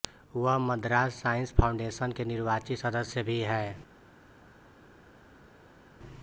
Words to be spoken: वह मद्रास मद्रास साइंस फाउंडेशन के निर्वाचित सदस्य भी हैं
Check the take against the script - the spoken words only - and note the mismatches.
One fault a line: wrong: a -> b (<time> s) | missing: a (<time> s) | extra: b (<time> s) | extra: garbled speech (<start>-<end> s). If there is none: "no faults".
missing: मद्रास (1.2 s)